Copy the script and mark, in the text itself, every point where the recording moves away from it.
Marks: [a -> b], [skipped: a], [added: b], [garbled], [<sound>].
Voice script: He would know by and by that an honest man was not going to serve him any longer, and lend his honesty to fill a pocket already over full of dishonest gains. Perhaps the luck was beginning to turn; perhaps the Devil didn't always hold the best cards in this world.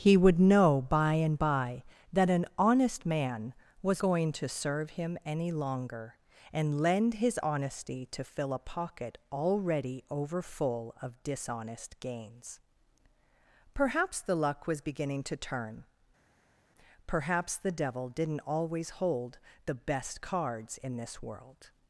He would know by and by that an honest man was [skipped: not] going to serve him any longer, and lend his honesty to fill a pocket already over full of dishonest gains. Perhaps the luck was beginning to turn; perhaps the Devil didn't always hold the best cards in this world.